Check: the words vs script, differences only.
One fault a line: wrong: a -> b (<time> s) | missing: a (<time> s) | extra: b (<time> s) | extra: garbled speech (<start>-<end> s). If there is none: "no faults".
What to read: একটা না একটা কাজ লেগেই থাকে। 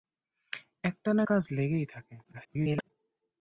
missing: একটা (1.2 s)
extra: garbled speech (2.2-2.9 s)